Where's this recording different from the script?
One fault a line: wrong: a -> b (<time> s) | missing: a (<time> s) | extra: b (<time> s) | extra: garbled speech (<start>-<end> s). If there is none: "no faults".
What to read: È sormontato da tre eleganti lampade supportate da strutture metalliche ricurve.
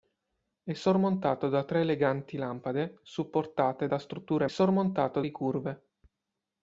wrong: metalliche -> sormontato (4.5 s)